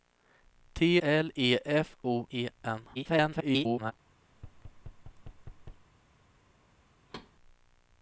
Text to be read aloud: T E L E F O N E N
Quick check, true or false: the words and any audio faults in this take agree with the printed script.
false